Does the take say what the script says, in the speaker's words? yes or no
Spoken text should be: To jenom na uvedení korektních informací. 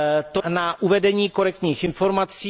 no